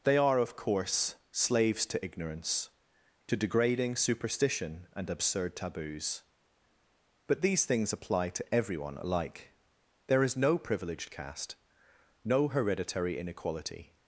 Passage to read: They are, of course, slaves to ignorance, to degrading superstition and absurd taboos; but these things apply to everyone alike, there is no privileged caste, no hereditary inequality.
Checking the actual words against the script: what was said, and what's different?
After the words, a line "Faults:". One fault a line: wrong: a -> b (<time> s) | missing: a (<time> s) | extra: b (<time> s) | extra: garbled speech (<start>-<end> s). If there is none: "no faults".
They are, of course, slaves to ignorance, to degrading superstition and absurd taboos; but these things apply to everyone alike, there is no privileged caste, no hereditary inequality.
Faults:
no faults